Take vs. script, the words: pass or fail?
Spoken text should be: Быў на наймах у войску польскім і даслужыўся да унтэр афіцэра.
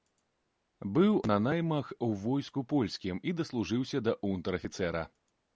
pass